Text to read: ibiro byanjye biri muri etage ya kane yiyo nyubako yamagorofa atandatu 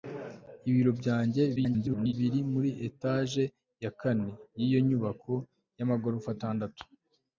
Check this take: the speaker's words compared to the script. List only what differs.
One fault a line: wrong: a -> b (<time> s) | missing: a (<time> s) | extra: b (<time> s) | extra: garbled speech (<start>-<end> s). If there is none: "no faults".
extra: garbled speech (1.6-2.1 s)